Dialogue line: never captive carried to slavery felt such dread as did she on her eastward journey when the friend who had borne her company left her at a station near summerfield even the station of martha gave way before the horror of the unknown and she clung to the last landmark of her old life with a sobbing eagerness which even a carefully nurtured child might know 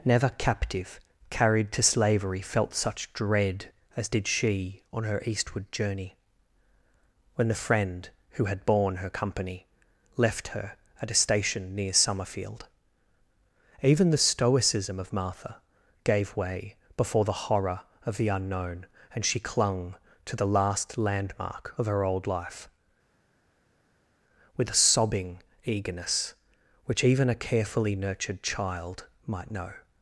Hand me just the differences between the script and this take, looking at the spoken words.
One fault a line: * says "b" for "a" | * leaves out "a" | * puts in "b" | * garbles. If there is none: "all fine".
* says "stoicism" for "station"